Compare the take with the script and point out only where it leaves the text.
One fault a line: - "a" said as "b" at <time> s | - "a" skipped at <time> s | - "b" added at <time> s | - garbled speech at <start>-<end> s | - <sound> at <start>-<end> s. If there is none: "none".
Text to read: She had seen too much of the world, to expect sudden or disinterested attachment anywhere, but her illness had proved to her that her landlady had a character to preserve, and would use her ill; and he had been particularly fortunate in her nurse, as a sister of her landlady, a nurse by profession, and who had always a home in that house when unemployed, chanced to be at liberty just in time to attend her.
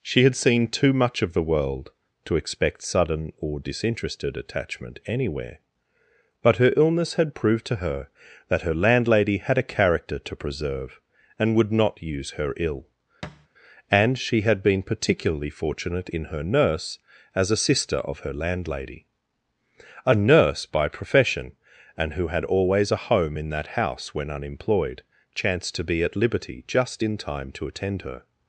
- "not" added at 11.7 s
- thud at 13.2-13.5 s
- "he" said as "she" at 14.2 s